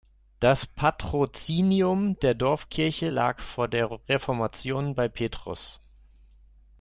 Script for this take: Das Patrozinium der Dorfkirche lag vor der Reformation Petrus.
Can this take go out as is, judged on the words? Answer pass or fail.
fail